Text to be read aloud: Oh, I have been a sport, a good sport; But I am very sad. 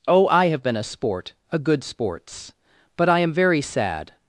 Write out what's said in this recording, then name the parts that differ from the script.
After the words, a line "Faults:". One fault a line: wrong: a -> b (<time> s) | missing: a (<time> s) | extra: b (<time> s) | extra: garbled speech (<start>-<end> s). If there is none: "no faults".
Oh, I have been a sport, a good sports; But I am very sad.
Faults:
wrong: sport -> sports (1.8 s)